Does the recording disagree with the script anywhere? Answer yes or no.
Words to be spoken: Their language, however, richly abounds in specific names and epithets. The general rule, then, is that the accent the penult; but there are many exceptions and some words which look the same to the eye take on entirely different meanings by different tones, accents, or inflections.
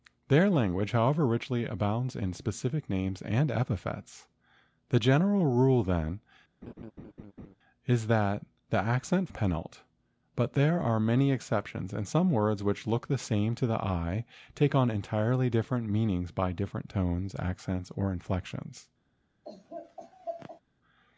no